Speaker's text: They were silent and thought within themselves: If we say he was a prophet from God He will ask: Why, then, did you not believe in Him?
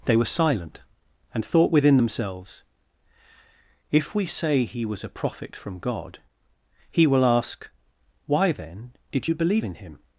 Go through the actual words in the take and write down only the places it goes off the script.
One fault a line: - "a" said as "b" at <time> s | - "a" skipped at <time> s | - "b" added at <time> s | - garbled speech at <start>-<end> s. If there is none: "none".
- "not" skipped at 9.3 s